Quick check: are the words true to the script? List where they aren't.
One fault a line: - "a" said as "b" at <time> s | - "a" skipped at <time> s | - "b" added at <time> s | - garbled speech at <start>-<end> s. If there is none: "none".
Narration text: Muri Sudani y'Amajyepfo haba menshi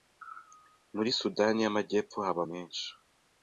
none